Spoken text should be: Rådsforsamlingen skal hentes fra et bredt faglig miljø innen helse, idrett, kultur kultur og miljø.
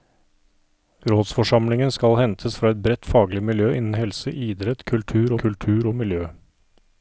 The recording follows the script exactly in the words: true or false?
true